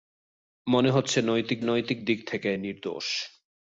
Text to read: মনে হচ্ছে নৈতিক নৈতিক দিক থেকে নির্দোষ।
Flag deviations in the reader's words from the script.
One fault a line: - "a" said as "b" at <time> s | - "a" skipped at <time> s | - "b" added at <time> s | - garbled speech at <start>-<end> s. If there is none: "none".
none